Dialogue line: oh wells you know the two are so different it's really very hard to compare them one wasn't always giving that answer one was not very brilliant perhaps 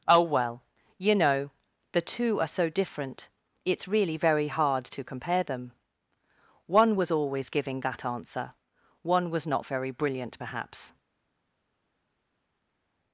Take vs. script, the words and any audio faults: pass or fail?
fail